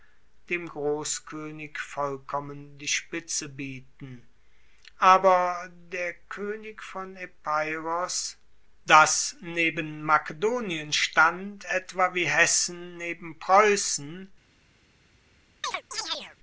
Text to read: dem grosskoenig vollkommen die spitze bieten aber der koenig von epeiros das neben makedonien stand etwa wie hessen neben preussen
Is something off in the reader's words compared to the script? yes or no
no